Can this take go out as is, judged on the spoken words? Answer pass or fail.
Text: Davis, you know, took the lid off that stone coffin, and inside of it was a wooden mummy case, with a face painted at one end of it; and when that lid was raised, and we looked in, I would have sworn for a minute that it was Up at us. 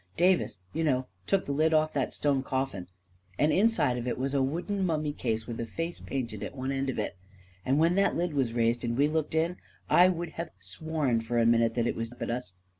pass